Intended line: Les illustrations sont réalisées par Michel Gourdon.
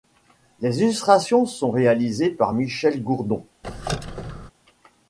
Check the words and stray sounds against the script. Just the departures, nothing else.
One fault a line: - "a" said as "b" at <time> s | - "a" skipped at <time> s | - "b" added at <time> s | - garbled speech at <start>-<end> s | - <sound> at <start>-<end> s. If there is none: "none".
- squeak at 3.6-4.5 s